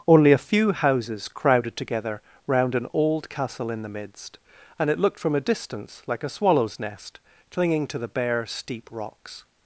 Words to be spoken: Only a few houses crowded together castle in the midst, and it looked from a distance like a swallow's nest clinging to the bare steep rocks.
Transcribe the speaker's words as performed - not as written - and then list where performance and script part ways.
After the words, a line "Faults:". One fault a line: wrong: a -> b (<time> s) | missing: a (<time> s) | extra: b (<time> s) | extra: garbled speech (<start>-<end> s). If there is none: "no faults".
Only a few houses crowded together round an old castle in the midst, and it looked from a distance like a swallow's nest clinging to the bare steep rocks.
Faults:
extra: round an old (2.5 s)